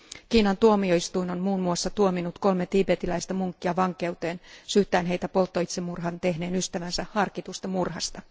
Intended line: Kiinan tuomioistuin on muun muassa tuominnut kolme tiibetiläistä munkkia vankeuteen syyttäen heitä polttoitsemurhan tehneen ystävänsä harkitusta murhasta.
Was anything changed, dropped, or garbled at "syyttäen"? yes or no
no